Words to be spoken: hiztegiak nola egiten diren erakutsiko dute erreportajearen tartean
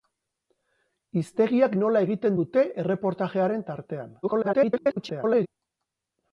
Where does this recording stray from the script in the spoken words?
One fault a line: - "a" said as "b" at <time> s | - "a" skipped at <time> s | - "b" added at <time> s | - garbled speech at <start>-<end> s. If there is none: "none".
- "diren erakutsiko" skipped at 2.4 s
- garbled speech at 4.2-5.5 s